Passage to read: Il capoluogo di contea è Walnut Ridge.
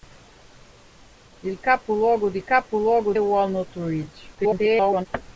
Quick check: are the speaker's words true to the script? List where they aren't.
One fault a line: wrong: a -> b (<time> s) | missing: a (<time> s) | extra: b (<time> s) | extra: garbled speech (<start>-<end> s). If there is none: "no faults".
wrong: contea -> capoluogo (2.4 s)
extra: garbled speech (4.3-5.1 s)